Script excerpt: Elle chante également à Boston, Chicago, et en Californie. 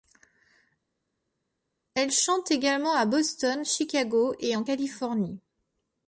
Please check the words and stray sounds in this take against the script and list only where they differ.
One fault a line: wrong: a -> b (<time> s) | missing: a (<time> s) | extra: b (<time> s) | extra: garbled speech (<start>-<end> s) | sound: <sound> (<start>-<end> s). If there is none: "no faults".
no faults